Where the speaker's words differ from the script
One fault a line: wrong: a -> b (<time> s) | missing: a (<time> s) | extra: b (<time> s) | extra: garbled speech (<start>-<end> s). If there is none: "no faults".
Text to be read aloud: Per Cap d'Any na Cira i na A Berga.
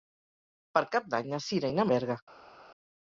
no faults